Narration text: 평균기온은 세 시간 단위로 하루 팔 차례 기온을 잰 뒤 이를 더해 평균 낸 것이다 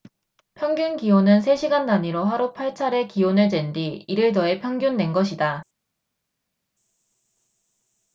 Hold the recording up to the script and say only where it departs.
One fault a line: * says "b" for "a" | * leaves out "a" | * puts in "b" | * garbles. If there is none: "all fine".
all fine